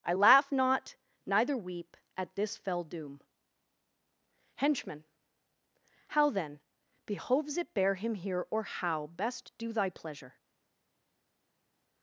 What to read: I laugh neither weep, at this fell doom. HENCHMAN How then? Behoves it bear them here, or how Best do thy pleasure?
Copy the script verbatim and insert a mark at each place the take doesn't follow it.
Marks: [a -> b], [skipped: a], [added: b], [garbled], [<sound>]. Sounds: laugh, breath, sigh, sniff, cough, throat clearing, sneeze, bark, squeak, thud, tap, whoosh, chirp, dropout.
I laugh [added: not] neither weep, at this fell doom. HENCHMAN How then? Behoves it bear [them -> him] here, or how Best do thy pleasure?